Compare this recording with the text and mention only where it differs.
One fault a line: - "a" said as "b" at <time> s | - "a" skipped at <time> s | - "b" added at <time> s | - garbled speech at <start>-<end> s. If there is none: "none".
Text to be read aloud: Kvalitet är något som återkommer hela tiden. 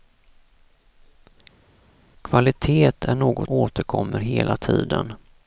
- "som" skipped at 3.5 s